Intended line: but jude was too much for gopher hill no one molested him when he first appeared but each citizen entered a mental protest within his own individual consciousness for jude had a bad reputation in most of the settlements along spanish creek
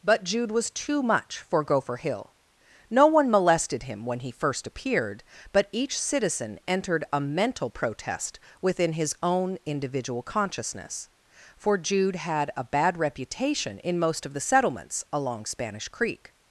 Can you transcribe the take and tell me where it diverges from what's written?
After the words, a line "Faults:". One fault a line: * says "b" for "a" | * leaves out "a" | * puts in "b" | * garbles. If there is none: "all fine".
but jude was too much for gopher hill no one molested him when he first appeared but each citizen entered a mental protest within his own individual consciousness for jude had a bad reputation in most of the settlements along spanish creek
Faults:
all fine